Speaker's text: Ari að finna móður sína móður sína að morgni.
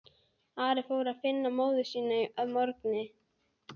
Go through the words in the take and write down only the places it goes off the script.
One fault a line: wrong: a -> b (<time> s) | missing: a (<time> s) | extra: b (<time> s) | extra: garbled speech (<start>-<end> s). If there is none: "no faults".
extra: fór (0.9 s)
missing: móður sína (2.2 s)